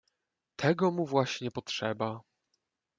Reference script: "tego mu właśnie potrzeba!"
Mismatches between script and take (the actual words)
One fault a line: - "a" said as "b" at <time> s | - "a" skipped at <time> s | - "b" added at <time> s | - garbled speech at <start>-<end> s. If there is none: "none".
none